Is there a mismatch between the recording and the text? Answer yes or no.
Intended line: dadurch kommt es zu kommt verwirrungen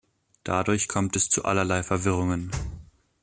yes